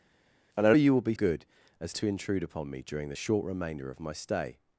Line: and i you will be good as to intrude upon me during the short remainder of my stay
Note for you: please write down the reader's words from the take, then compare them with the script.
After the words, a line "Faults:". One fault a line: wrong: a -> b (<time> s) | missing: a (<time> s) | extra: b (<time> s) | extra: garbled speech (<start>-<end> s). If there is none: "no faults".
and i you will be good as to intrude upon me during the short remainder of my stay
Faults:
no faults